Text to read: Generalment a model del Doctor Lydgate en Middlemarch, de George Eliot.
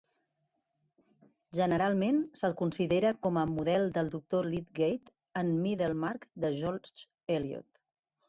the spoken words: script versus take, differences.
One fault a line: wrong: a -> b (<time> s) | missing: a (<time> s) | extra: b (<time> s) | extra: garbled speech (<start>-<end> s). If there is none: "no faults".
extra: se'l considera com (2.4 s)